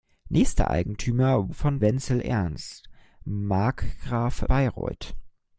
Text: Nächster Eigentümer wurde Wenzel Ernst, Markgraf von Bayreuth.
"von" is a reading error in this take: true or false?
true